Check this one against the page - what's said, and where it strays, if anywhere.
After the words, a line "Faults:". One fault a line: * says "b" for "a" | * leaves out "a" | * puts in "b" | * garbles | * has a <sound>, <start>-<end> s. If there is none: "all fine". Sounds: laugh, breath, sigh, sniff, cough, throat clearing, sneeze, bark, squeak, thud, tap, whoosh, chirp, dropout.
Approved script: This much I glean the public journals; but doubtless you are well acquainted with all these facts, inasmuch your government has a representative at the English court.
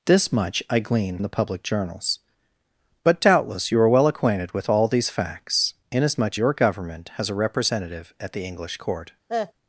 This much I glean the public journals; but doubtless you are well acquainted with all these facts, inasmuch your government has a representative at the English court.
Faults:
* has a cough, 9.3-9.5 s